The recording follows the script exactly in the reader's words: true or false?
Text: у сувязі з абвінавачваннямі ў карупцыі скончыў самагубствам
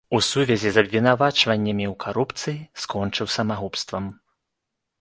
true